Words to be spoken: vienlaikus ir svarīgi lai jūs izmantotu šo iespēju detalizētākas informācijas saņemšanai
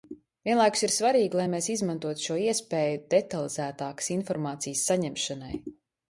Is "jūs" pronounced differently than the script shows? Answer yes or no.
yes